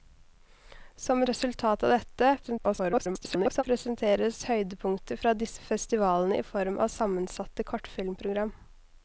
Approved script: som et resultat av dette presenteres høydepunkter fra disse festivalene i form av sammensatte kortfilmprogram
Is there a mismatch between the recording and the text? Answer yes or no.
yes